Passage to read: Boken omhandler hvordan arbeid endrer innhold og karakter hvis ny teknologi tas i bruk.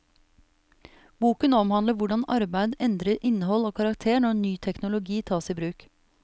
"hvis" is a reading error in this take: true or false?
true